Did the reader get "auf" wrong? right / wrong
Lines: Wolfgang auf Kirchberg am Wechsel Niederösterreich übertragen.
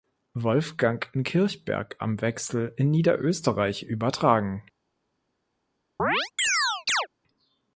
wrong